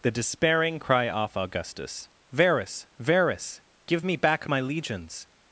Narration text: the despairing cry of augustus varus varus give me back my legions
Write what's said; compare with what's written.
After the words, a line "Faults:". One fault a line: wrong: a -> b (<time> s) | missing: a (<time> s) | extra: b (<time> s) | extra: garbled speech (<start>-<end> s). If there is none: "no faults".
the despairing cry off augustus varus varus give me back my legions
Faults:
wrong: of -> off (1.1 s)